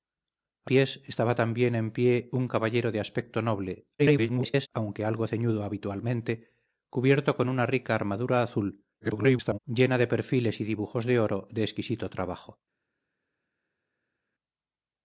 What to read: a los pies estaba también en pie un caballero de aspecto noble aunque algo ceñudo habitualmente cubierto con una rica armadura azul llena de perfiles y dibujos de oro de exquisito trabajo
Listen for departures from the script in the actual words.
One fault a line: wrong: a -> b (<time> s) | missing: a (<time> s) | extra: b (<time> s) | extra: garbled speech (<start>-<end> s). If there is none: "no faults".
missing: los (0.7 s)
extra: garbled speech (4.0-4.7 s)
extra: garbled speech (9.0-9.6 s)